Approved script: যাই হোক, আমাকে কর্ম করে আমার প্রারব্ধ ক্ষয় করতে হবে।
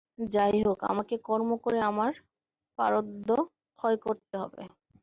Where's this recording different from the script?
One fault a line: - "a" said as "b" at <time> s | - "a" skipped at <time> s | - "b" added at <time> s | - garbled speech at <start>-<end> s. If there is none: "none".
none